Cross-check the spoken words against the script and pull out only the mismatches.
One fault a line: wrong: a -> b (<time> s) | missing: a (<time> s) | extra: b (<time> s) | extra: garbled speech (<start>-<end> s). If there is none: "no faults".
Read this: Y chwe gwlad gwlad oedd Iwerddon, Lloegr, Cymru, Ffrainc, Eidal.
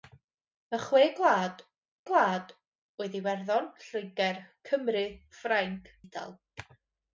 no faults